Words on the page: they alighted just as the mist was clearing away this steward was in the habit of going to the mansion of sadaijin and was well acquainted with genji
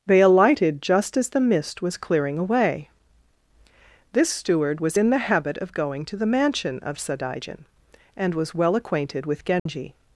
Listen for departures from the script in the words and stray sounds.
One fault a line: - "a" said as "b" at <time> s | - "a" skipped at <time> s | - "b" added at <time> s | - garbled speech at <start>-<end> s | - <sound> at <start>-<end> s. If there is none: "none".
- dropout at 9.6-9.7 s